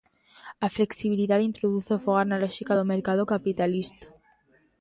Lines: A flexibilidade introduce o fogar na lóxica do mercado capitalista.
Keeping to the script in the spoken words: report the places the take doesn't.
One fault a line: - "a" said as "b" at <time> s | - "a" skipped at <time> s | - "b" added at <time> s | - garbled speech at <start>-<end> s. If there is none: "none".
none